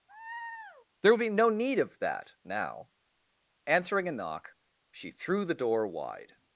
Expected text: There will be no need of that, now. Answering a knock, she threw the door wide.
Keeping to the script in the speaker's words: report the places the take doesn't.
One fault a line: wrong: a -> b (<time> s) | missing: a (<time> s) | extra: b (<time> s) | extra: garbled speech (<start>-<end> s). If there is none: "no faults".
no faults